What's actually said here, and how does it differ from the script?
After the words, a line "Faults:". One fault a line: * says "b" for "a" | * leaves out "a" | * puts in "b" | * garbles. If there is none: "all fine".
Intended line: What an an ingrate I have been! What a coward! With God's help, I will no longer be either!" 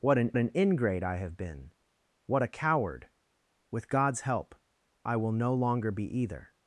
What an an ingrate I have been! What a coward! With God's help, I will no longer be either!"
Faults:
all fine